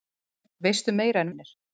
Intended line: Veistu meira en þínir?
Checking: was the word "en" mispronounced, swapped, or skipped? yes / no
no